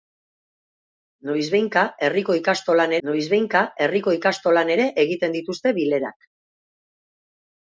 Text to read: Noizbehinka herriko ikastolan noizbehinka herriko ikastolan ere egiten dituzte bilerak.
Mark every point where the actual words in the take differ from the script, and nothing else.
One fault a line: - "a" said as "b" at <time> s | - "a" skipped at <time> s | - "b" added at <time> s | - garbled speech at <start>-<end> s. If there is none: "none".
none